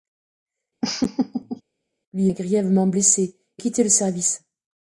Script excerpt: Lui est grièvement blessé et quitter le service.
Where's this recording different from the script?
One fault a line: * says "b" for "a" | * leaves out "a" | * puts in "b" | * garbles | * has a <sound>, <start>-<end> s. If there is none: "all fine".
* has a laugh, 0.8-1.6 s